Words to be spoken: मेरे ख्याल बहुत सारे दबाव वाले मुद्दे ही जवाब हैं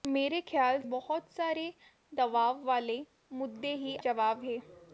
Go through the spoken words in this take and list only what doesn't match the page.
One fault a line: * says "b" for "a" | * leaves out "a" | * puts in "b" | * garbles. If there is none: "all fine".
all fine